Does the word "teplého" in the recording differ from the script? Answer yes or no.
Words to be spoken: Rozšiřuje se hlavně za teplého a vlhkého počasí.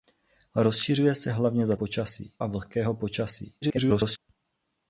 yes